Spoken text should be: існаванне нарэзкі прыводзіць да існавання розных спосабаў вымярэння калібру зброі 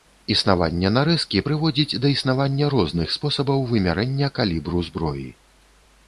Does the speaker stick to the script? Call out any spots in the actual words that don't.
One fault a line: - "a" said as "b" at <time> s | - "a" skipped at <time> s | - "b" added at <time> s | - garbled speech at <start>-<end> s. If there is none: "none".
none